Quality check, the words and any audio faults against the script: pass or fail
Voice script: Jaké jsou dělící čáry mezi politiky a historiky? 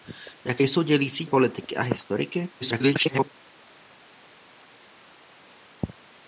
fail